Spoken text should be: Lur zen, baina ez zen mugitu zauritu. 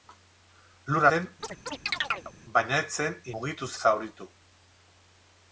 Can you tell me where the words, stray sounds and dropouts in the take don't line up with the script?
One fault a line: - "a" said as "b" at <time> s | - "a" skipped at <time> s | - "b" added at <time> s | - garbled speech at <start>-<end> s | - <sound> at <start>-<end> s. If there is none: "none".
- chirp at 1.4-2.3 s